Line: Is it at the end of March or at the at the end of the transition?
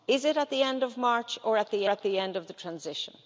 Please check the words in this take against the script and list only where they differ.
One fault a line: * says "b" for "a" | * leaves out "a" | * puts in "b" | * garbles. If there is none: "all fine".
all fine